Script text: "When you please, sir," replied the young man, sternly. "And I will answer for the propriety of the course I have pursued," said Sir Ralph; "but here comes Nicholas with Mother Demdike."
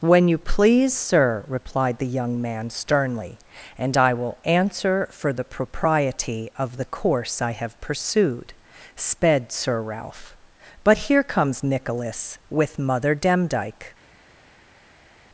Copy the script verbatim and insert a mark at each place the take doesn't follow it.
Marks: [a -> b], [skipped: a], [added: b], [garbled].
"When you please, sir," replied the young man, sternly. "And I will answer for the propriety of the course I have pursued," [said -> sped] Sir Ralph; "but here comes Nicholas with Mother Demdike."